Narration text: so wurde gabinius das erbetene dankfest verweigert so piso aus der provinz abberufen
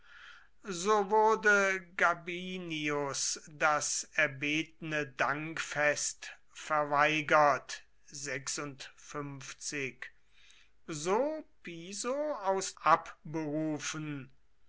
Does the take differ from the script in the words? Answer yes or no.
yes